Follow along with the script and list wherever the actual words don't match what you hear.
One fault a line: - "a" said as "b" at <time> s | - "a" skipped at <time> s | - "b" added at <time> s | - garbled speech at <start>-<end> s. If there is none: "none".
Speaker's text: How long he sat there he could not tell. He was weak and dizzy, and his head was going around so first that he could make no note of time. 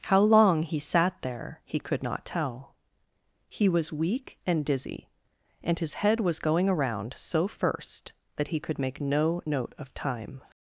none